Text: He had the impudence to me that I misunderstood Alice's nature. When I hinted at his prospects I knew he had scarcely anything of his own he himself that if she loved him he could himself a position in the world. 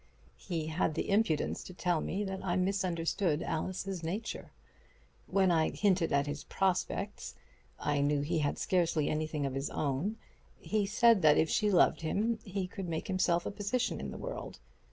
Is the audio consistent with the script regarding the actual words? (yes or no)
no